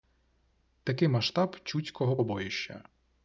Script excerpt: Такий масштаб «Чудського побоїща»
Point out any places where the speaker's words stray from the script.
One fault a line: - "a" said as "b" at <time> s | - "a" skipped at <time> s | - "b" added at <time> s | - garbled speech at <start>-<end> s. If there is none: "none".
none